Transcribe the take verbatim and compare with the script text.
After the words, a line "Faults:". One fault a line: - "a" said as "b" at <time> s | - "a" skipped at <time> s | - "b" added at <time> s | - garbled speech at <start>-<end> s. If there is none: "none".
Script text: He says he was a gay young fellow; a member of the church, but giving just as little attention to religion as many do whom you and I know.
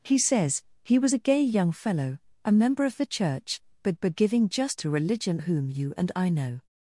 He says he was a gay young fellow; a member of the church, but but giving just to religion whom you and I know.
Faults:
- "but" added at 4.0 s
- "as little attention" skipped at 4.8 s
- "as many do" skipped at 5.4 s